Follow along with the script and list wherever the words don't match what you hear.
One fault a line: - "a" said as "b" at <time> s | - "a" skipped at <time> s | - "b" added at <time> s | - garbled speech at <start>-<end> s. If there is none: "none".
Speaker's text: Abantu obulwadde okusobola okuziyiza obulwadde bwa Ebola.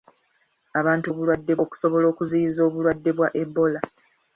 none